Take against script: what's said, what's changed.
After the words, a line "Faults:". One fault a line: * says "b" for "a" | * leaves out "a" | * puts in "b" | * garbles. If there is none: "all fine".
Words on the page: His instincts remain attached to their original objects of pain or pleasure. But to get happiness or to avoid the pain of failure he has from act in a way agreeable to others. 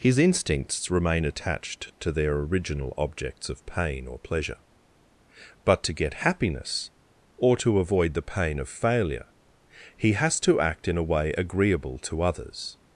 His instincts remain attached to their original objects of pain or pleasure. But to get happiness or to avoid the pain of failure he has to act in a way agreeable to others.
Faults:
* says "to" for "from"